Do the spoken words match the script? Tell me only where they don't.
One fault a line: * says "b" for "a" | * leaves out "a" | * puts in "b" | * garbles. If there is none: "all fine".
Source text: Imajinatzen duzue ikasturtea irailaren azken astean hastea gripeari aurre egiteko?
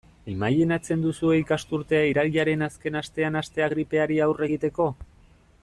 all fine